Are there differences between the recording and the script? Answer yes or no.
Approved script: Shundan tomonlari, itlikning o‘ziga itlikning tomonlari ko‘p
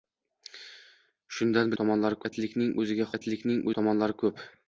no